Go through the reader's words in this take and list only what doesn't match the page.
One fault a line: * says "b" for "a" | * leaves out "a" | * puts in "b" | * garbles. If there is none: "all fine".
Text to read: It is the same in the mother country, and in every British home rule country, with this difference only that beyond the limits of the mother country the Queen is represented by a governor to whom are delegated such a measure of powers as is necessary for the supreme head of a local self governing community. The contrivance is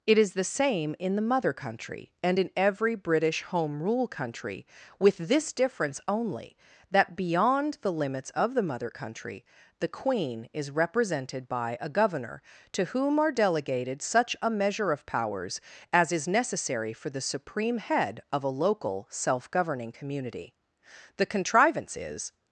all fine